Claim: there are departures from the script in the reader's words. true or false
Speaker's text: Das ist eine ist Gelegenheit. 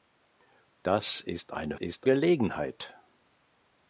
false